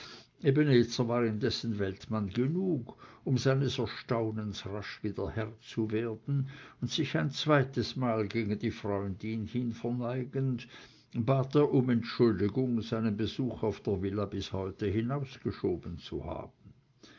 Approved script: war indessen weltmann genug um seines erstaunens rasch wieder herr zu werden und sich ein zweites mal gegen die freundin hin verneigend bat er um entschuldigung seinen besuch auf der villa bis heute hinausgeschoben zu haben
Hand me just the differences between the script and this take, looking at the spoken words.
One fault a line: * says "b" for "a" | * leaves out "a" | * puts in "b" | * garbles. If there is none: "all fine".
all fine